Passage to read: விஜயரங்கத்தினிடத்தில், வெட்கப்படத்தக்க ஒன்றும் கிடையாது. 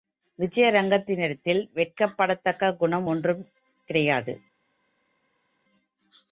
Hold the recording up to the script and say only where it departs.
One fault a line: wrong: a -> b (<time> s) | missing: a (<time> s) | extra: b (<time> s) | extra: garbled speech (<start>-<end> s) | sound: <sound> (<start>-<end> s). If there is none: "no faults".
extra: குணம் (2.7 s)